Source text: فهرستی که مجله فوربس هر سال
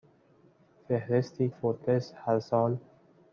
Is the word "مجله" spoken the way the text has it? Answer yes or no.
no